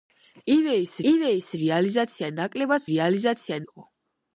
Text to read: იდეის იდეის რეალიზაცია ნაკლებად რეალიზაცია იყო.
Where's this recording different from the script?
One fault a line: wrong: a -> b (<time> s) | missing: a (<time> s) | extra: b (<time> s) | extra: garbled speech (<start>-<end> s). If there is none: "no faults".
no faults